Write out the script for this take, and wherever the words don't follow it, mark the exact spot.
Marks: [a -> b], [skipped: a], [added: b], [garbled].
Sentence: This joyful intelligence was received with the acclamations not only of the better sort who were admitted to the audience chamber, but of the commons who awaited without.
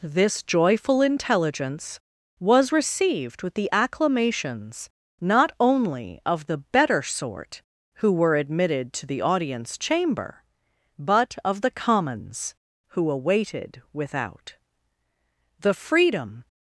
This joyful intelligence was received with the acclamations not only of the better sort who were admitted to the audience chamber, but of the commons who awaited without. [added: The freedom]